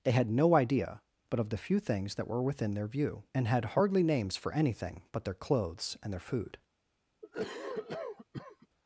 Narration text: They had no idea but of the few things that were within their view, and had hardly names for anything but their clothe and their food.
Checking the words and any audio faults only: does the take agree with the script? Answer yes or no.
no